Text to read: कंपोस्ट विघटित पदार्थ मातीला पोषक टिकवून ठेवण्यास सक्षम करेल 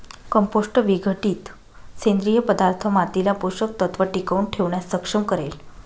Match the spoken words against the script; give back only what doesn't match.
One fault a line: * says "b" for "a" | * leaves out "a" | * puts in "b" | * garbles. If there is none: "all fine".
* puts in "सेंद्रिय"
* puts in "तत्व"